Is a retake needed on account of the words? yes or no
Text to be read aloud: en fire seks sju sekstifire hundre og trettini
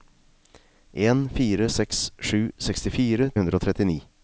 no